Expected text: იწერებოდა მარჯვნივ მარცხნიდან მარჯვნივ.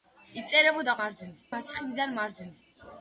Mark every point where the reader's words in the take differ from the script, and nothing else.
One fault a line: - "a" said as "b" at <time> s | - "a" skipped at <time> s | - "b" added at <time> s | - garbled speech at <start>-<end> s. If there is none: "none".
none